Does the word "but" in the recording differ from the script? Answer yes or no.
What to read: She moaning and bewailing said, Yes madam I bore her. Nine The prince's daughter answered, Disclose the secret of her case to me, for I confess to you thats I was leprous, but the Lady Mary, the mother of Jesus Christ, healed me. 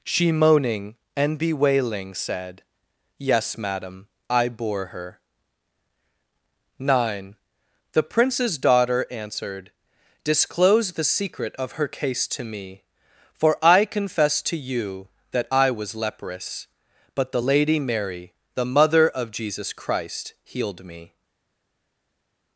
no